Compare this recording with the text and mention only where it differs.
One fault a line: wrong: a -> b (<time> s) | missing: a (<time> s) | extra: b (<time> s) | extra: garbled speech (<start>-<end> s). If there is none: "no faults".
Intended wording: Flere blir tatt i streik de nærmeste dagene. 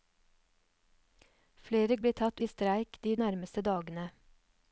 no faults